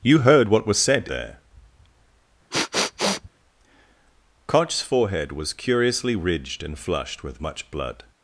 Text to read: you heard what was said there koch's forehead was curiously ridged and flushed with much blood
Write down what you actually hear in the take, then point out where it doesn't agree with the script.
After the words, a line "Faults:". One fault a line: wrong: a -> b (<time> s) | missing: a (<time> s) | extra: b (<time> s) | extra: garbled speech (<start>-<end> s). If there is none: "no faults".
you heard what was said there koch's forehead was curiously ridged and flushed with much blood
Faults:
no faults